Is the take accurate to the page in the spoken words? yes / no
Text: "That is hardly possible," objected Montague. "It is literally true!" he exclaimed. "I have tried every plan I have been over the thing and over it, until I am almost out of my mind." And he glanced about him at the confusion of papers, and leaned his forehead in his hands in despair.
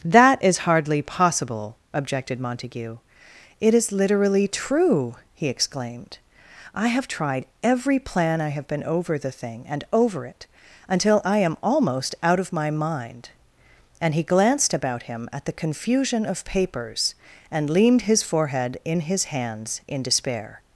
yes